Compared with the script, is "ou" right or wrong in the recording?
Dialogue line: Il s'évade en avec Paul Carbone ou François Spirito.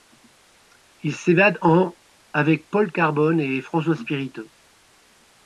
wrong